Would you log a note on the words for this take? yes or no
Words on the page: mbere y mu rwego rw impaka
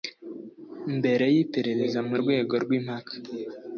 yes